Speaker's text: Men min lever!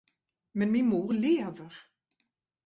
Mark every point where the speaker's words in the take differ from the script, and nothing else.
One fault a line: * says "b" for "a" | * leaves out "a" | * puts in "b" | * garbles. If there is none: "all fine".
* puts in "mor"